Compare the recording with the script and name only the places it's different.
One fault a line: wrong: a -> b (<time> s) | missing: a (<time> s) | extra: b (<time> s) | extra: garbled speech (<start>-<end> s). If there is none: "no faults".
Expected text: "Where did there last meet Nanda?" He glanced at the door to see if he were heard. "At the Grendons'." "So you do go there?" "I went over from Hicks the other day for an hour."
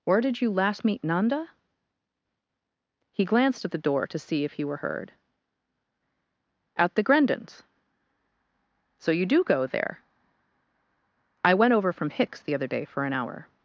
wrong: there -> you (0.4 s)